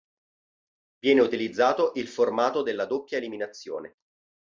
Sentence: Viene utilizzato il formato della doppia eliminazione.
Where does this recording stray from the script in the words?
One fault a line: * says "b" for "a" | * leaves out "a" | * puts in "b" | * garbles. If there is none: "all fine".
all fine